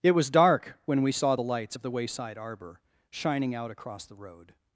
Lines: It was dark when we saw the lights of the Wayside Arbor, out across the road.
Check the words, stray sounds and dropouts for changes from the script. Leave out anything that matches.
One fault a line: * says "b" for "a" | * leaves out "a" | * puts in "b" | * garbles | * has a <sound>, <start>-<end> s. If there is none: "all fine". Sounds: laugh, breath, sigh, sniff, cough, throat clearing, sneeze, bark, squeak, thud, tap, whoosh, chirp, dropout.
* puts in "shining"